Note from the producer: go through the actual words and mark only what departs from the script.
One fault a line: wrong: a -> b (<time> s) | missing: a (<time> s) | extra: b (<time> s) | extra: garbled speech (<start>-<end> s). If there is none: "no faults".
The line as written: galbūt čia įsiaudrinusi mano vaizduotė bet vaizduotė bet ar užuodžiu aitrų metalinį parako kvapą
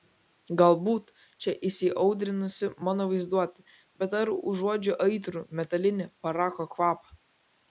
missing: vaizduotė bet (4.1 s)